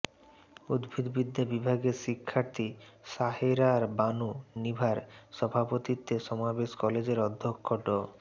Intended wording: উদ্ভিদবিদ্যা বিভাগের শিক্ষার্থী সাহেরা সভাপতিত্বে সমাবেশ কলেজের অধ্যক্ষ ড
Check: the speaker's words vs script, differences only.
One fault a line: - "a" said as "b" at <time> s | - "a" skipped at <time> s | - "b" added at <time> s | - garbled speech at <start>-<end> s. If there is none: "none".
- "বানু নিভার" added at 4.0 s